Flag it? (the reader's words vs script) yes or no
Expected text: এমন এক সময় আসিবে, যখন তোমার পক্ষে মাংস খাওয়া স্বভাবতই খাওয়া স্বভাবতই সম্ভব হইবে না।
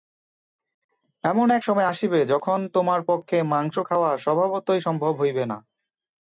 yes